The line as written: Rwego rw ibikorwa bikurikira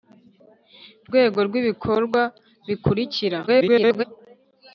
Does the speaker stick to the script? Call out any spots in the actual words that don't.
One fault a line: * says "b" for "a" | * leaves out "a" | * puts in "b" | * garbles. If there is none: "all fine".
* garbles